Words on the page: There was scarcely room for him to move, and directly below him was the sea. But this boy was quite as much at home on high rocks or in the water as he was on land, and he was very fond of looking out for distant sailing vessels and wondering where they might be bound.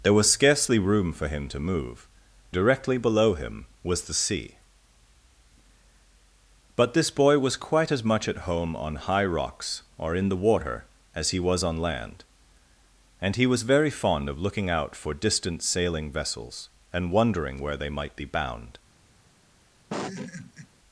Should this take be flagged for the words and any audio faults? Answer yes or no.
yes